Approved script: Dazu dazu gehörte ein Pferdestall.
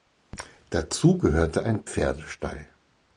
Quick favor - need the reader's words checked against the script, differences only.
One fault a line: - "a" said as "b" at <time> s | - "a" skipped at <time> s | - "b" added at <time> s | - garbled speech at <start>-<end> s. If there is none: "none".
- "dazu" skipped at 1.2 s